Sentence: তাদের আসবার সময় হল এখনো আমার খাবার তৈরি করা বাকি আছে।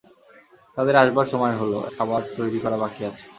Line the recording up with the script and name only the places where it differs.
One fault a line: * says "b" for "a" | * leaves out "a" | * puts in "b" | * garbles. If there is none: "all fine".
* leaves out "এখনো আমার"